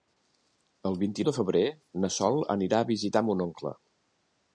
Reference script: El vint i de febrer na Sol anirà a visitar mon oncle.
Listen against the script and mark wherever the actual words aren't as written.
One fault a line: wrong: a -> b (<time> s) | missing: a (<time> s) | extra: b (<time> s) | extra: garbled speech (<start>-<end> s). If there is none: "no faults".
no faults